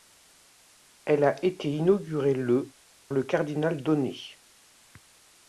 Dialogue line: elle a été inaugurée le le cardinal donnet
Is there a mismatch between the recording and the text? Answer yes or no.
no